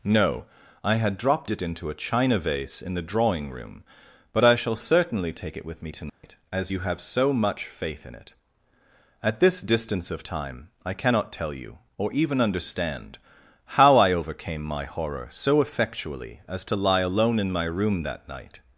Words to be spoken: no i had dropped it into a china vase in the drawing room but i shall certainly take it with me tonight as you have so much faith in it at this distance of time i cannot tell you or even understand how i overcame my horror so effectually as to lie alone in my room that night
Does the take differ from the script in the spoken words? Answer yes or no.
no